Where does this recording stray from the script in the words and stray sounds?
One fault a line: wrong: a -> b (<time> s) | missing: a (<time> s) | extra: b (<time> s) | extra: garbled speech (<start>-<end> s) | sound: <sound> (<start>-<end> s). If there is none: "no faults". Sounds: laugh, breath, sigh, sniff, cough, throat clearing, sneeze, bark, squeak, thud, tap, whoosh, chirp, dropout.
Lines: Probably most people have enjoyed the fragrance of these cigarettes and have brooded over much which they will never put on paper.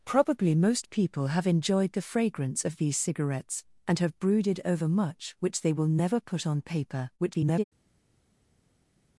extra: garbled speech (7.2-7.6 s)